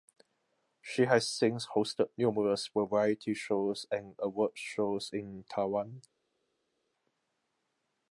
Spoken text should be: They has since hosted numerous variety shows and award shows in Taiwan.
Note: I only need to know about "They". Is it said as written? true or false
false